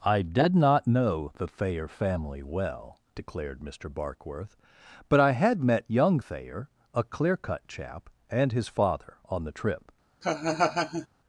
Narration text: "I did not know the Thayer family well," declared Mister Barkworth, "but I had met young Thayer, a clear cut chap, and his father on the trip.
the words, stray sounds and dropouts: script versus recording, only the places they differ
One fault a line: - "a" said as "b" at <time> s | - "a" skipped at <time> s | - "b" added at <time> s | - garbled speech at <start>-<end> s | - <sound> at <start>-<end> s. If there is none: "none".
- laugh at 10.2-11.1 s